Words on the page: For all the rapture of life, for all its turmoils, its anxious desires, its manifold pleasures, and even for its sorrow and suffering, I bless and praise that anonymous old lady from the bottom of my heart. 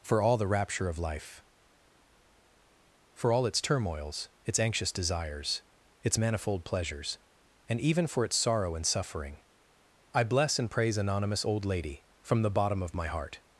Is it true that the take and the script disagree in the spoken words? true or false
true